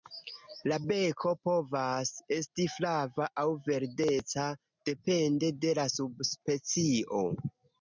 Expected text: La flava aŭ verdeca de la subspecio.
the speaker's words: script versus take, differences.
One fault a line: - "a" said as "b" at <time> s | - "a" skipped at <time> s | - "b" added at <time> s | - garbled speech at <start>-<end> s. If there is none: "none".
- "beko povas esti" added at 0.9 s
- "depende" added at 4.9 s